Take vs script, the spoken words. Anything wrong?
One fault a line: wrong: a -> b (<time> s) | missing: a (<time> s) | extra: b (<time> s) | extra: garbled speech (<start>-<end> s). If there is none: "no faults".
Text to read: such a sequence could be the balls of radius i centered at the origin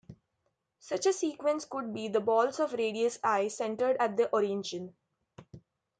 no faults